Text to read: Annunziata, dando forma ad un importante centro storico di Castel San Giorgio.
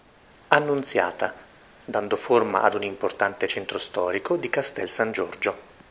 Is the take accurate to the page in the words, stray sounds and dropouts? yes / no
yes